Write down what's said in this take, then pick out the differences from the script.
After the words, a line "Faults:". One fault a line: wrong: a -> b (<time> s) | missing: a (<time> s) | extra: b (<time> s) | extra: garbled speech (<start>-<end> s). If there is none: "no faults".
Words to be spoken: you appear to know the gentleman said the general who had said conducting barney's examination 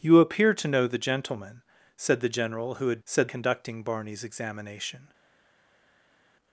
you appear to know the gentleman said the general who had said conducting barney's examination
Faults:
no faults